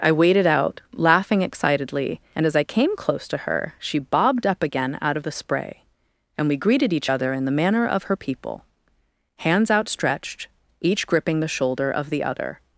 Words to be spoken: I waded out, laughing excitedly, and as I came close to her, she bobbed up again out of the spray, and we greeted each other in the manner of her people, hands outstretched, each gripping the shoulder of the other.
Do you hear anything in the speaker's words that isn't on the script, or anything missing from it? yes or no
no